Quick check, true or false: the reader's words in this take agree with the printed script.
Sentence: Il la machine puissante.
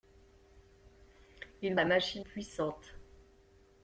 true